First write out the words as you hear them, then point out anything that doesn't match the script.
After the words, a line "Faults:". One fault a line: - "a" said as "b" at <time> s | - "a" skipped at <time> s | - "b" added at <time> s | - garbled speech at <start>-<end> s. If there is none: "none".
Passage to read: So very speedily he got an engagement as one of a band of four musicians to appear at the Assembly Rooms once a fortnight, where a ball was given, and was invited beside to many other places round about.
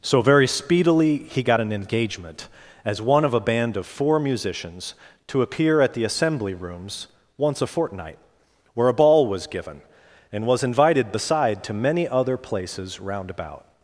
So very speedily he got an engagement as one of a band of four musicians to appear at the Assembly Rooms once a fortnight, where a ball was given, and was invited beside to many other places round about.
Faults:
none